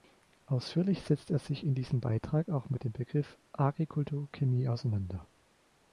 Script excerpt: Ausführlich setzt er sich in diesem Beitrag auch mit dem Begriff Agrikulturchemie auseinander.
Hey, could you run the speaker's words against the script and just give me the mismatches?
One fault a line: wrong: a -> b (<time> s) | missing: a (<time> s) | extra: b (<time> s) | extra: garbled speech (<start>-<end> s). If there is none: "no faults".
no faults